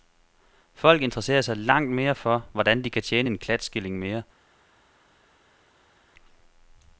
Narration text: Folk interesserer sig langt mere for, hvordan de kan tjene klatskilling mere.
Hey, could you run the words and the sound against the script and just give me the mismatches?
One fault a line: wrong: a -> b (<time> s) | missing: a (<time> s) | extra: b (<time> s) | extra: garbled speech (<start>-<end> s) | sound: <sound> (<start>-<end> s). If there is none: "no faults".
extra: en (3.3 s)